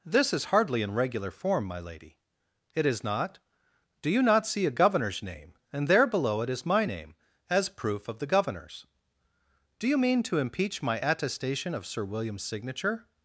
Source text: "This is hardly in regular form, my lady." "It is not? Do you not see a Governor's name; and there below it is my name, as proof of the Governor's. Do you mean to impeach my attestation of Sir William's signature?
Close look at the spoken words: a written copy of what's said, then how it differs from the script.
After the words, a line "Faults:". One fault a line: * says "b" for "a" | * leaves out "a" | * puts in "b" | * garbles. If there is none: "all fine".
"This is hardly in regular form, my lady." "It is not? Do you not see a Governor's name; and there below it is my name, as proof of the Governor's. Do you mean to impeach my attestation of Sir William's signature?
Faults:
all fine